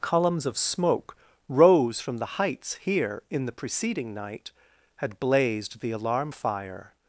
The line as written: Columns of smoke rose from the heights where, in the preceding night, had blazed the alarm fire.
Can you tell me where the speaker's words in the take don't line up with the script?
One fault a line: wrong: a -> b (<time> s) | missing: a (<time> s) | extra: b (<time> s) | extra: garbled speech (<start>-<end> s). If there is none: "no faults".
wrong: where -> here (2.8 s)